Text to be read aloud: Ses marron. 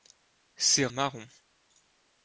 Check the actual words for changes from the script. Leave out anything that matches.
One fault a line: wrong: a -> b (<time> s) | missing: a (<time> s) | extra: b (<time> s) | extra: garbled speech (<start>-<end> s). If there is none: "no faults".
no faults